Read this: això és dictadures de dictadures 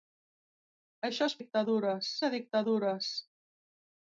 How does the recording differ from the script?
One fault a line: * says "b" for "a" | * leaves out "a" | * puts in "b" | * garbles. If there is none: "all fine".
all fine